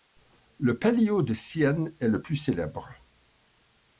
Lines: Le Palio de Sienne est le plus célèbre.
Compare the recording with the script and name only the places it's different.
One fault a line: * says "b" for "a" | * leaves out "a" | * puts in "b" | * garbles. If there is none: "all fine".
all fine